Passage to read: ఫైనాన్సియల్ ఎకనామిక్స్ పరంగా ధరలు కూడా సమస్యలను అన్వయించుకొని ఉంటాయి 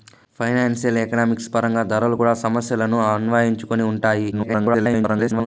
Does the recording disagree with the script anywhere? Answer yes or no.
yes